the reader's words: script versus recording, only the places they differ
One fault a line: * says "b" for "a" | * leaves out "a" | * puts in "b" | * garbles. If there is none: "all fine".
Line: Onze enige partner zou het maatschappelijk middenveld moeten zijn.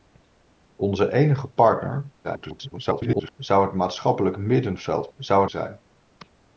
* garbles
* says "zou" for "moeten"